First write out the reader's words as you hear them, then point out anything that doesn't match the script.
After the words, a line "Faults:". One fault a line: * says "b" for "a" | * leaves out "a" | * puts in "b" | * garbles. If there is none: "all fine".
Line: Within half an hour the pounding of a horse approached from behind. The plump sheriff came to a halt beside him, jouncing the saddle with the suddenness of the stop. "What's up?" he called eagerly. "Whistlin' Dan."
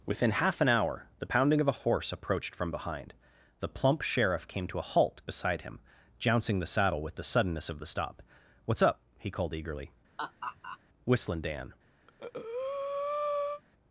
Within half an hour the pounding of a horse approached from behind. The plump sheriff came to a halt beside him, jouncing the saddle with the suddenness of the stop. "What's up?" he called eagerly. "Whistlin' Dan."
Faults:
all fine